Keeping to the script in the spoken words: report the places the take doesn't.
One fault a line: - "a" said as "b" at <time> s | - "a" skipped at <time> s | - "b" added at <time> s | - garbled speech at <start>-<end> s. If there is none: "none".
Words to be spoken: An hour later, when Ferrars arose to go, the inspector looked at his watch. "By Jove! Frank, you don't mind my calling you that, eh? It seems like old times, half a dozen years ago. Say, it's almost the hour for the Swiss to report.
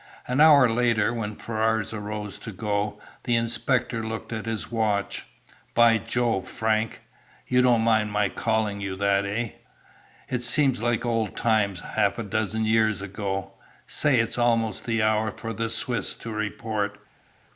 none